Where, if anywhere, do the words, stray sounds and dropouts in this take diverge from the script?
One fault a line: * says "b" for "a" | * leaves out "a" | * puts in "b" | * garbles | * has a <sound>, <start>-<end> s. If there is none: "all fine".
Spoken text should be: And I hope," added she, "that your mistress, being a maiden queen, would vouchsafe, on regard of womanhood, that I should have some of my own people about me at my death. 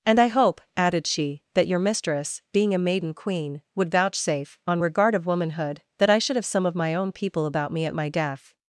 all fine